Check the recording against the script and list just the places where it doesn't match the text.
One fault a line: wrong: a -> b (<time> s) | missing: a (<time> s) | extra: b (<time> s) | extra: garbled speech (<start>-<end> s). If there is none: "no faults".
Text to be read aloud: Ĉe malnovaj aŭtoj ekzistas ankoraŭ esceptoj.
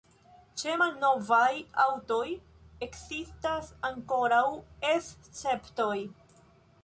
no faults